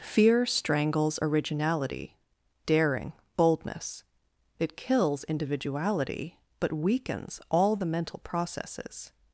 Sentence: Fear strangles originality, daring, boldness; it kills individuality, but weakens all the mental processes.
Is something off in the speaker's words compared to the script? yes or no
no